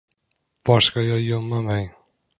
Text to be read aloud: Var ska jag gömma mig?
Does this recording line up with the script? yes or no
yes